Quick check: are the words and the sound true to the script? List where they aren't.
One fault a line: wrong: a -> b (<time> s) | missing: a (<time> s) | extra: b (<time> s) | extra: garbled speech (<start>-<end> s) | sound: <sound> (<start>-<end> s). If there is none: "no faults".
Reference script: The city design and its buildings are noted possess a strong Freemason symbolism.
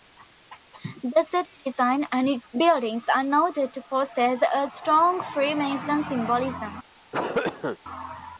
extra: to (3.7 s)
sound: cough (7.1-7.8 s)